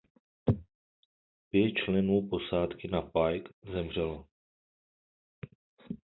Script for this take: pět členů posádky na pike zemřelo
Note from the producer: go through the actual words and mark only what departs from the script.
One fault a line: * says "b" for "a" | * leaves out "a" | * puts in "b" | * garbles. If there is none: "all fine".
all fine